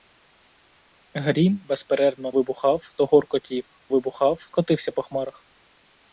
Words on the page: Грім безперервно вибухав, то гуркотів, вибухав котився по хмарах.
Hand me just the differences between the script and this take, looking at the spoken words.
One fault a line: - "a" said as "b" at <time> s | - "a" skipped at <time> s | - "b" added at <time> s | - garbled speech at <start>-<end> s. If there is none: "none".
none